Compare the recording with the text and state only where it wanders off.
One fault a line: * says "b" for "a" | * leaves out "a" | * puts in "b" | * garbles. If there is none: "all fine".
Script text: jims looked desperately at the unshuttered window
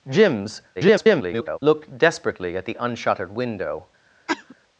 * garbles